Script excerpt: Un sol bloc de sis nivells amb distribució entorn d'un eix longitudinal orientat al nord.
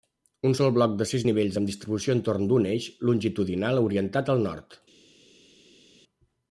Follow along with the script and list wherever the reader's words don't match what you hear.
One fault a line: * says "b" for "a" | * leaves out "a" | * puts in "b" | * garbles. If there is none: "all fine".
all fine